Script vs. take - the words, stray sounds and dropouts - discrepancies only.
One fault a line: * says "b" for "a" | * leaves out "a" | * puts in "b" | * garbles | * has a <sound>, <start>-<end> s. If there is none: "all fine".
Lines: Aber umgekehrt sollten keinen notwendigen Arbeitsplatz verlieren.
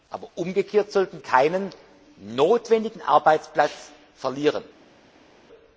all fine